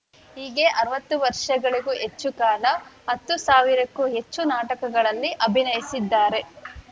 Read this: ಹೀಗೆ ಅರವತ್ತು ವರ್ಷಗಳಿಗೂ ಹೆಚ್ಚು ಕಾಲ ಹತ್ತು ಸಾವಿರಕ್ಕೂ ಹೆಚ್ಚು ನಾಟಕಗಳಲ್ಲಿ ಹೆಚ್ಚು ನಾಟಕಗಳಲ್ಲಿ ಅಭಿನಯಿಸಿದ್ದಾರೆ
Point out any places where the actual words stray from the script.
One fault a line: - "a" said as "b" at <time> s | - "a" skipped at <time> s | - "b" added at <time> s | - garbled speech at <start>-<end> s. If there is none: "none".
- "ಹೆಚ್ಚು ನಾಟಕಗಳಲ್ಲಿ" skipped at 5.3 s